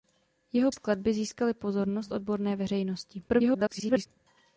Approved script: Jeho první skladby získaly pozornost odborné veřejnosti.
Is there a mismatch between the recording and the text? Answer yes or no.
yes